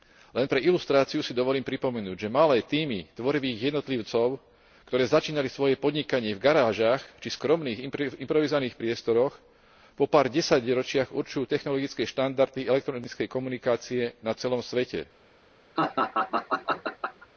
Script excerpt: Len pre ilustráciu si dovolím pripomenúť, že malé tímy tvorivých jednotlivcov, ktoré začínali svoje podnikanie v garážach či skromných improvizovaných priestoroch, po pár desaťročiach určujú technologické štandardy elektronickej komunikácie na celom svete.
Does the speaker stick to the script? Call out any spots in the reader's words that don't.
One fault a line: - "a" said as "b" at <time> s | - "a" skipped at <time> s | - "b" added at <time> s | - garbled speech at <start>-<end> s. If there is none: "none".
none